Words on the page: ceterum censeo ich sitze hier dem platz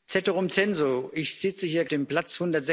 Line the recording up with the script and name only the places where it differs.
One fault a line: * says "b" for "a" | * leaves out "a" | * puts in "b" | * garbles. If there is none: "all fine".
all fine